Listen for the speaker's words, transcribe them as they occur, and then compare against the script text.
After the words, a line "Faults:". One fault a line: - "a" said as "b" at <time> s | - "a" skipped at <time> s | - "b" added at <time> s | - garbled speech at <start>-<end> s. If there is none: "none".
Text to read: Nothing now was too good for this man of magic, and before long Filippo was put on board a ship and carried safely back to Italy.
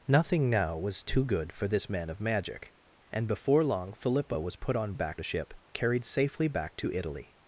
Nothing now was too good for this man of magic, and before long Filippo was put on back a ship carried safely back to Italy.
Faults:
- "board" said as "back" at 4.9 s
- "and" skipped at 5.5 s